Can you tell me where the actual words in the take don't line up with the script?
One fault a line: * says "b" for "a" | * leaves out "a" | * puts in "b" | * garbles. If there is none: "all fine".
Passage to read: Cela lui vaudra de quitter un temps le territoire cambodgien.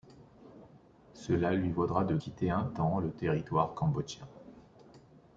all fine